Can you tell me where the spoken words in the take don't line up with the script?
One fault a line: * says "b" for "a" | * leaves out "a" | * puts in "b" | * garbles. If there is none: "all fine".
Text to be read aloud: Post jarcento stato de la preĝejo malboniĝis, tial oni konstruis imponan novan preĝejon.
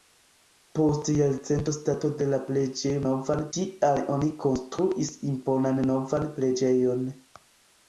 * says "novan" for "malboniĝis"